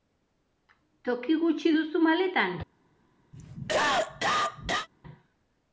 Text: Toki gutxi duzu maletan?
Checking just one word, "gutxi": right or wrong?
right